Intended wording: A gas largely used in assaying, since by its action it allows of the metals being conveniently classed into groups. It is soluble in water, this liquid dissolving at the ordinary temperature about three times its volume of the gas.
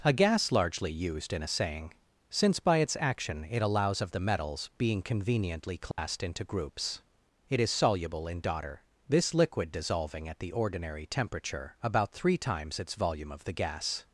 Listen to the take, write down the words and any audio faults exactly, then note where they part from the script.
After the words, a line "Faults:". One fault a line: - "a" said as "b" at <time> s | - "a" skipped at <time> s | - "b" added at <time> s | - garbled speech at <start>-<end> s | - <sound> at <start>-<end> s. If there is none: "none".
A gas largely used in assaying, since by its action it allows of the metals being conveniently classed into groups. It is soluble in daughter, this liquid dissolving at the ordinary temperature about three times its volume of the gas.
Faults:
- dropout at 5.9-6.0 s
- "water" said as "daughter" at 8.4 s